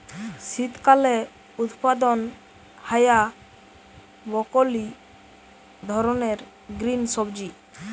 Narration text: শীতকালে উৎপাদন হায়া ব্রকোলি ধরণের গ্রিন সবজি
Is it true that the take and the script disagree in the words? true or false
false